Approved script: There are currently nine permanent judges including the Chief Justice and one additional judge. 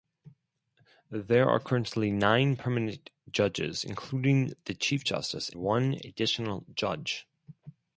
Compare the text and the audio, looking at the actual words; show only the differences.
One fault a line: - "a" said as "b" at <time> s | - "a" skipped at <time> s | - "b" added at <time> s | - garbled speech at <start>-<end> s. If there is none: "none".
- "and" skipped at 5.5 s